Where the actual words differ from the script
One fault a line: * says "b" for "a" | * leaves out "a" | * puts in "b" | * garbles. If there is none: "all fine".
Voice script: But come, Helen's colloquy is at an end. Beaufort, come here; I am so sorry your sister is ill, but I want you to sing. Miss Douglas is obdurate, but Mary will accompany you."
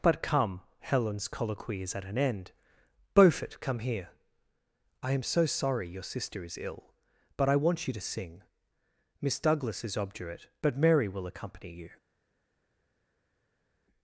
all fine